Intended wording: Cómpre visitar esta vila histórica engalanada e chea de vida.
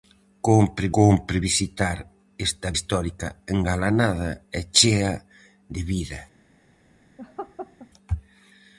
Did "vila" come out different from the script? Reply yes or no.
yes